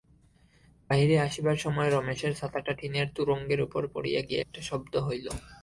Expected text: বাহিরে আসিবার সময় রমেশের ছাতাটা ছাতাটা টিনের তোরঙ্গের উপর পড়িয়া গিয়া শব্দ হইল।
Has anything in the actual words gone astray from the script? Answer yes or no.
yes